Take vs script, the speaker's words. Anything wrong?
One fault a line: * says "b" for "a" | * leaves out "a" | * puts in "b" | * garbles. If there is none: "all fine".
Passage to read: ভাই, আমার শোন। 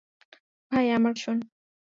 all fine